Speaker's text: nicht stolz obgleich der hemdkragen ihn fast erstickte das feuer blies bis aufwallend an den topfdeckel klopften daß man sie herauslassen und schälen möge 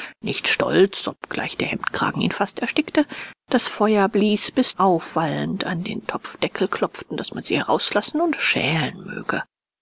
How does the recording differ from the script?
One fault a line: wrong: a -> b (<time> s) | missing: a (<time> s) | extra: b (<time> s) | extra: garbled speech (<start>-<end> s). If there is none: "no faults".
no faults